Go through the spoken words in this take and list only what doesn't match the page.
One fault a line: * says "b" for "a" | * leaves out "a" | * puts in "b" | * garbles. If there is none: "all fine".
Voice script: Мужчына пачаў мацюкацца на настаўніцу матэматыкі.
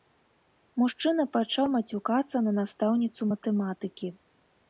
all fine